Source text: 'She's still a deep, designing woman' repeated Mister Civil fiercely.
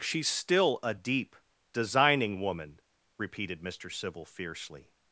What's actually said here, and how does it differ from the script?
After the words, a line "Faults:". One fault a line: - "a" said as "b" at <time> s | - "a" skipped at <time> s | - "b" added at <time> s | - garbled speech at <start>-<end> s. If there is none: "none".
'She's still a deep, designing woman' repeated Mister Civil fiercely.
Faults:
none